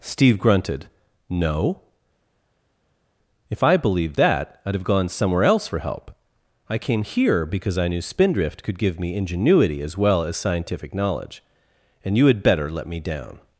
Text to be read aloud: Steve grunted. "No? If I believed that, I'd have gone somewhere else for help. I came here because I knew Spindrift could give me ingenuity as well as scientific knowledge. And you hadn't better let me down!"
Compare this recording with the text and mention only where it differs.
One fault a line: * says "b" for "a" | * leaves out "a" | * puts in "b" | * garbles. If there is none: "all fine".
* says "had" for "hadn't"